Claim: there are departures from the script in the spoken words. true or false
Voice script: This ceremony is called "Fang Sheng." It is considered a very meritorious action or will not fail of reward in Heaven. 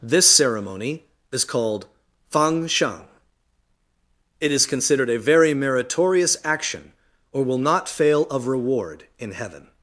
false